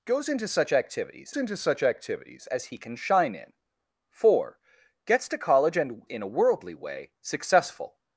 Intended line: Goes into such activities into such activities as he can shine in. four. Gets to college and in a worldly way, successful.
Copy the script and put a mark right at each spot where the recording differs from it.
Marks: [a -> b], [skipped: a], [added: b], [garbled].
Goes into such activities into such activities as he can shine in. four. Gets to college and in a worldly way, successful.